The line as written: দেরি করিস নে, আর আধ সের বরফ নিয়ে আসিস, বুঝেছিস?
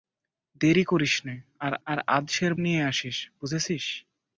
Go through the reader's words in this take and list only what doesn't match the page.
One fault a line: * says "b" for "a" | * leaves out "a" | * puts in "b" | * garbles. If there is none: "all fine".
* puts in "আর"
* leaves out "বরফ"